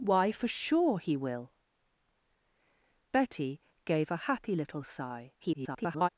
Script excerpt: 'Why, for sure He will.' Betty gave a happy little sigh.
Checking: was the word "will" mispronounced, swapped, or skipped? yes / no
no